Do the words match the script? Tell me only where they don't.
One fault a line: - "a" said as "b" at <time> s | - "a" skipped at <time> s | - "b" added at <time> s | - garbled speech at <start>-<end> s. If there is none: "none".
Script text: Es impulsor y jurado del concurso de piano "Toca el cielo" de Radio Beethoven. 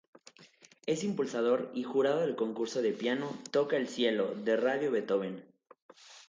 none